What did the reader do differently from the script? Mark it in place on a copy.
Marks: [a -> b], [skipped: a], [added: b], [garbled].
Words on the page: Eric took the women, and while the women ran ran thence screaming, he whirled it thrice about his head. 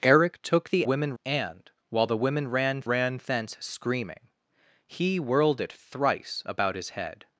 Eric took the women, and while the women ran ran thence screaming, he whirled it thrice about his head.